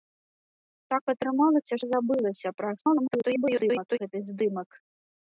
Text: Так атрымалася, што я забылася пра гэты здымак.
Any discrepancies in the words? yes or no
yes